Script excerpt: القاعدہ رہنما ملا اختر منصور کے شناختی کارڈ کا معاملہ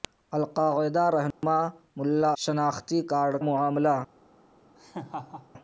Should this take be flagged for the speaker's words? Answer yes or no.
yes